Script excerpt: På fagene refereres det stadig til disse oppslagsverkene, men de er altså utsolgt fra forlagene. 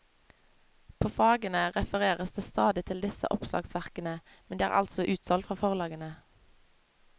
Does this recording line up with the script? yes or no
yes